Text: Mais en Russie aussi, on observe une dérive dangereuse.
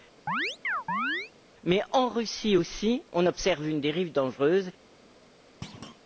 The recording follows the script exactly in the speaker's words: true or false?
true